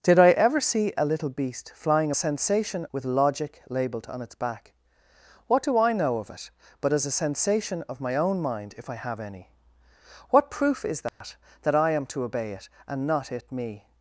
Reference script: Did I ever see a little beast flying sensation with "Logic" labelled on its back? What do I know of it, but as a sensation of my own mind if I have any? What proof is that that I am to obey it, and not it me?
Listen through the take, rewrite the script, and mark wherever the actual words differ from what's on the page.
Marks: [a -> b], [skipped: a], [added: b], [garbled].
Did I ever see a little beast flying sensation with "Logic" labelled on its back? What do I know of it, but as a sensation of my own mind if I have any? What proof is that that I am to obey it, and not it me?